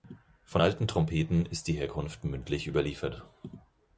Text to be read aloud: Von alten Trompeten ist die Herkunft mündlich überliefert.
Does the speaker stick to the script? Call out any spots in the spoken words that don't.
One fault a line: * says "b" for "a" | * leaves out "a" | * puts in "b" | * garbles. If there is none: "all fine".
all fine